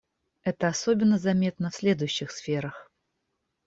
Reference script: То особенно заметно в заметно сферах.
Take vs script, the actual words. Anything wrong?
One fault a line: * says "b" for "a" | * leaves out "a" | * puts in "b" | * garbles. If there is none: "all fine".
* says "Это" for "То"
* says "следующих" for "заметно"